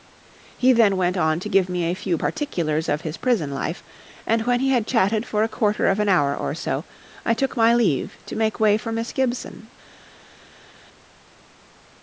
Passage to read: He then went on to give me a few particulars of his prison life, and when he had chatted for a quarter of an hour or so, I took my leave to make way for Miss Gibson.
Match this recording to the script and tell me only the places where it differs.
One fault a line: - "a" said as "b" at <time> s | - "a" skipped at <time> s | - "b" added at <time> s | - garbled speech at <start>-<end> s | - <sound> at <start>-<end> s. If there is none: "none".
none